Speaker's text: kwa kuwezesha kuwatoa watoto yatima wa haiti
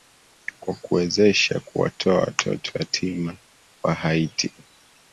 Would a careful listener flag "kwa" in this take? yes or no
no